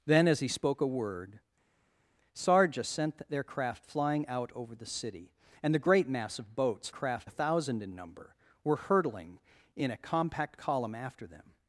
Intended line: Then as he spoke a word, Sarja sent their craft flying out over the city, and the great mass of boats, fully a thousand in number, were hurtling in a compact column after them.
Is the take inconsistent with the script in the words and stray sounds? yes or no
yes